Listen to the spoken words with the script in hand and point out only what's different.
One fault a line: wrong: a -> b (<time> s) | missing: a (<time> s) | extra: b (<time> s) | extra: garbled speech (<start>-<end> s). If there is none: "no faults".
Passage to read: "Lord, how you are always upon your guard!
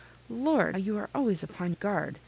missing: how (0.8 s)
missing: your (1.7 s)